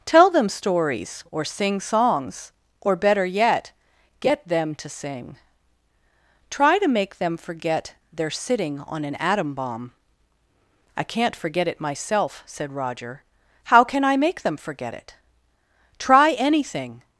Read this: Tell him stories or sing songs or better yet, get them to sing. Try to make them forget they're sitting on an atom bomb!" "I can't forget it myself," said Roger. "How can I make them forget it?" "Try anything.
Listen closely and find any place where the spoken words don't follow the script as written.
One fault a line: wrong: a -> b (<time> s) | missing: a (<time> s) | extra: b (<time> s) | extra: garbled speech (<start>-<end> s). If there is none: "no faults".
wrong: him -> them (0.3 s)